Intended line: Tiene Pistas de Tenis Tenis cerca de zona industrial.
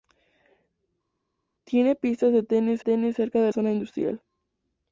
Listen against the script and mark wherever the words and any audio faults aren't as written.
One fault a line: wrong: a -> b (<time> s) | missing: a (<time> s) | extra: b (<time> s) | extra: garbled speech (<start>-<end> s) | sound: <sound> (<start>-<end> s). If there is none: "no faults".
no faults